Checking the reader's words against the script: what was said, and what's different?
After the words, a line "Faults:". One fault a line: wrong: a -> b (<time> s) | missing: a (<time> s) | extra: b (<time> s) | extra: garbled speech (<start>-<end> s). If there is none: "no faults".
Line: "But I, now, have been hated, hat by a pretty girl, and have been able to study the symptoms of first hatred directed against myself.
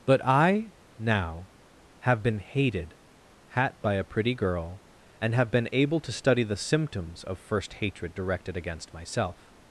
"But I, now, have been hated, hat by a pretty girl, and have been able to study the symptoms of first hatred directed against myself.
Faults:
no faults